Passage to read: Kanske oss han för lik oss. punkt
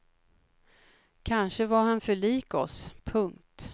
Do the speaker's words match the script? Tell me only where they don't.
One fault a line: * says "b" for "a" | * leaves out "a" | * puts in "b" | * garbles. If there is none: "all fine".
* says "var" for "oss"